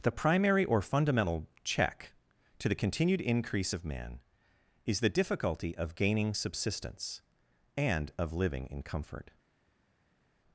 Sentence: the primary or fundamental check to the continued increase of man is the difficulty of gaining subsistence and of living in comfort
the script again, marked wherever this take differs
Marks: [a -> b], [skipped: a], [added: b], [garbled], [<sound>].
the primary or fundamental check to the continued increase of man is the difficulty of gaining subsistence and of living in comfort